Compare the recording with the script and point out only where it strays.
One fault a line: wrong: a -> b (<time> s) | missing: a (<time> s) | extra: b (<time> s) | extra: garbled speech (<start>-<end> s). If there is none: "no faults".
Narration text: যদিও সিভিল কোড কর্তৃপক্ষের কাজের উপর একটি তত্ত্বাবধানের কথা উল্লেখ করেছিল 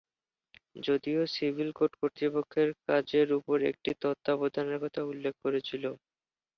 no faults